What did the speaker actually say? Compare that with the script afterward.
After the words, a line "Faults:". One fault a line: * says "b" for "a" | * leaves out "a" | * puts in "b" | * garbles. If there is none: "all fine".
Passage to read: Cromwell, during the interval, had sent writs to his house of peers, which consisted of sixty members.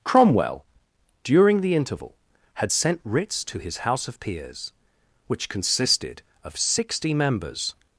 Cromwell, during the interval, had sent writs to his house of peers, which consisted of sixty members.
Faults:
all fine